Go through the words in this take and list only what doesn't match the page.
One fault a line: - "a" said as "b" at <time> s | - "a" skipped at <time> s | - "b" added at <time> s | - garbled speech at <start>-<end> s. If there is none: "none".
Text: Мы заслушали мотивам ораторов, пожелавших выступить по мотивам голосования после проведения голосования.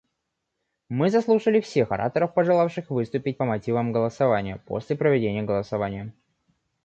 - "мотивам" said as "всех" at 1.6 s